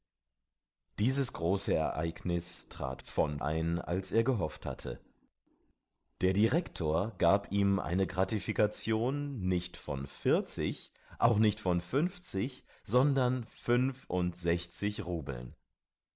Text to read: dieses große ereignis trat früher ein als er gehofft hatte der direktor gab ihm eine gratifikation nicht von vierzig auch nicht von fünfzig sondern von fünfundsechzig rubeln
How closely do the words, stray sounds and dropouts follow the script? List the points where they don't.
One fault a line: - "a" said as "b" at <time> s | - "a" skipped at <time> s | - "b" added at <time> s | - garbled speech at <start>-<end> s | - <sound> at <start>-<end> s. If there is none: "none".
- "früher" said as "von" at 3.0 s
- "von" skipped at 13.4 s